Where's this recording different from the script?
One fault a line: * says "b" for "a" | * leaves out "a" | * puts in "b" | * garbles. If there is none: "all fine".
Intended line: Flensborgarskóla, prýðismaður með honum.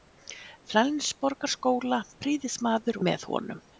all fine